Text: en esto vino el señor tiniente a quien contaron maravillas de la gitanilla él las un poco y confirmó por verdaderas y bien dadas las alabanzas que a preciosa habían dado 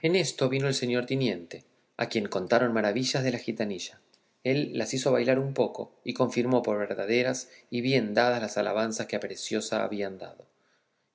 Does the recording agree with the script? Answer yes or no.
no